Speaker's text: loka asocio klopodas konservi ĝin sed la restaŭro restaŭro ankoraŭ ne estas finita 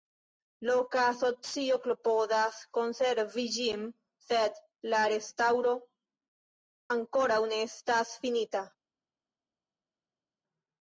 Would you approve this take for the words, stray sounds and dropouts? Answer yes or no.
no